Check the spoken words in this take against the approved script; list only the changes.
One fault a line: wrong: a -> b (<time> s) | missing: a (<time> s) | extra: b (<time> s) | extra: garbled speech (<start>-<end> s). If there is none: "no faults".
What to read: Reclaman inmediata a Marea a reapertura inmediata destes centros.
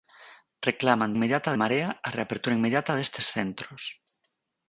no faults